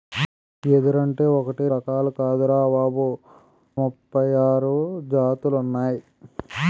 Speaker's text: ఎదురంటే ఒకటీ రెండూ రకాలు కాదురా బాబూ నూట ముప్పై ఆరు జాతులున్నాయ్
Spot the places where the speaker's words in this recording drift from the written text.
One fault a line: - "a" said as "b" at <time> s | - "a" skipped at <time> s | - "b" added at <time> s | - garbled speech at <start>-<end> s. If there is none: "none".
- "రెండూ" skipped at 1.6 s
- "నూట" skipped at 3.1 s